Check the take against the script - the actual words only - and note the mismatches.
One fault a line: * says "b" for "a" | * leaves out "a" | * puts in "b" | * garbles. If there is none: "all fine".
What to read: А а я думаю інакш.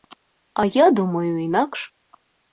* leaves out "а"